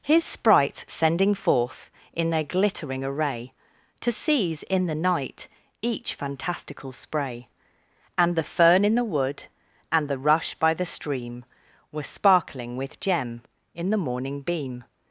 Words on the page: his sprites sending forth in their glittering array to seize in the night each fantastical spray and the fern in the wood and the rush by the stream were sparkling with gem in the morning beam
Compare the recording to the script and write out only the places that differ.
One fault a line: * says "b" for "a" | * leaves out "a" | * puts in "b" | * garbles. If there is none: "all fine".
all fine